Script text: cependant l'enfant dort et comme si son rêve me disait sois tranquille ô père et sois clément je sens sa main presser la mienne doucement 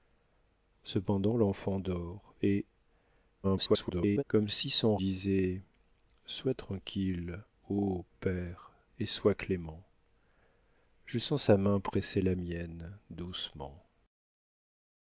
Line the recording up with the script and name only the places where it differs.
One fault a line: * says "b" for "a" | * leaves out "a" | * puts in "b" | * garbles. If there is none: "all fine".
* garbles
* leaves out "rêve me"